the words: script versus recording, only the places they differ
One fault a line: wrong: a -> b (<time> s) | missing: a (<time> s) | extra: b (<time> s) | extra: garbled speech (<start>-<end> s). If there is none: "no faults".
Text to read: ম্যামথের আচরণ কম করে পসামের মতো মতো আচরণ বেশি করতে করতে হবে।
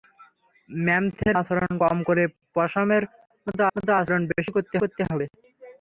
no faults